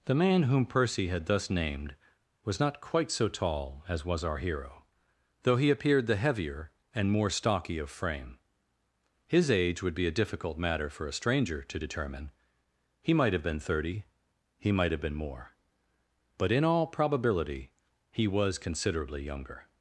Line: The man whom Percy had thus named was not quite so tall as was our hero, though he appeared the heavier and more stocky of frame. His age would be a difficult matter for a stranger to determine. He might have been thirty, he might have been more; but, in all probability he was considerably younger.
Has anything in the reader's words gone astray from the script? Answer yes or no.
no